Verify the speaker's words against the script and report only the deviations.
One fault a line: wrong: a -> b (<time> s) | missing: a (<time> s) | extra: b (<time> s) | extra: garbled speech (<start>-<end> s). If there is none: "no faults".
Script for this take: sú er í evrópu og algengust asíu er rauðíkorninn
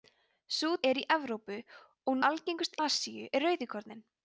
no faults